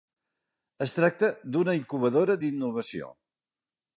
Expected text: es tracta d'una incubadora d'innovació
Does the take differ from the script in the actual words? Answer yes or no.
no